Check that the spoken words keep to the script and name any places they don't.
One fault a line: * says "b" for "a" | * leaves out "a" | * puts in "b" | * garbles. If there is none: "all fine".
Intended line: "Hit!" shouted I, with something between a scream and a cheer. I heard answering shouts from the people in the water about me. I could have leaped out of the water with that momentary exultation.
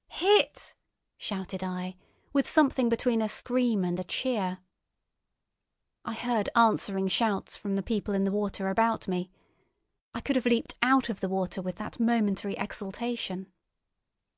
all fine